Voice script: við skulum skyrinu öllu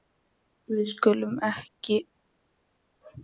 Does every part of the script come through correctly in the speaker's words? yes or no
no